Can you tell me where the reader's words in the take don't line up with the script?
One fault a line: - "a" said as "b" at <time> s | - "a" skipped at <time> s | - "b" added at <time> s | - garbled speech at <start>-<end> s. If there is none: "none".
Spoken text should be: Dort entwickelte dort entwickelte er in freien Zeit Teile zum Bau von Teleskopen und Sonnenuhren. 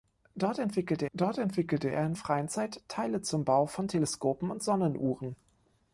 none